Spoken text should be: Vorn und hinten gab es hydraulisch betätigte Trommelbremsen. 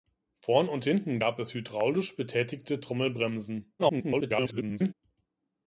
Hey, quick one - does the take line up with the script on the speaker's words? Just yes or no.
no